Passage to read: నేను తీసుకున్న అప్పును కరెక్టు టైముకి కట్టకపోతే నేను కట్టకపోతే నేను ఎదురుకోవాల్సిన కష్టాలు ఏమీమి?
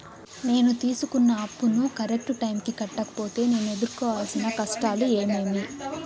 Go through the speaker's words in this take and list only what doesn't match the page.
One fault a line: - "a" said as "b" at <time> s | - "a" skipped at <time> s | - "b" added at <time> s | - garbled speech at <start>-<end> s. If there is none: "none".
- "కట్టకపోతే నేను" skipped at 3.7 s